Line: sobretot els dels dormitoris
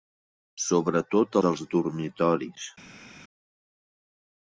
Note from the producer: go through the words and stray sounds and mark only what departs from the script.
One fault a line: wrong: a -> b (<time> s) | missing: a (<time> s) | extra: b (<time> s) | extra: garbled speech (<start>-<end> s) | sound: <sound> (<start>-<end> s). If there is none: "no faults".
missing: els (1.4 s)